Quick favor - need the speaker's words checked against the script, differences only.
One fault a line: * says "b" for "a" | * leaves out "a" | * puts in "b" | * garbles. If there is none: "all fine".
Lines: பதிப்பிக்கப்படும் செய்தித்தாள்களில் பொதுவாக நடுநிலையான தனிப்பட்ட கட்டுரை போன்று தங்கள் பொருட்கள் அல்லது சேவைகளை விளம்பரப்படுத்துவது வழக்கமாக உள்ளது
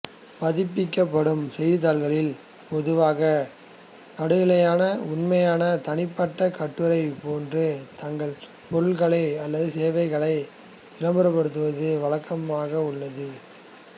* puts in "உண்மையான"